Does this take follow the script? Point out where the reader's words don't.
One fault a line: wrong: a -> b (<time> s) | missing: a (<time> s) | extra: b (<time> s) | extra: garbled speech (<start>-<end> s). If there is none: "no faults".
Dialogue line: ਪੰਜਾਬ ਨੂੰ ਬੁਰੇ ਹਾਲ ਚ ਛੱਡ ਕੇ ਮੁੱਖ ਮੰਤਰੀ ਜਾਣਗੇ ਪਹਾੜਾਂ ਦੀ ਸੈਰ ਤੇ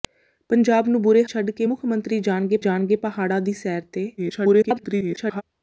missing: ਹਾਲ ਚ (1.2 s)
extra: ਜਾਣਗੇ (2.6 s)
extra: garbled speech (4.2-5.4 s)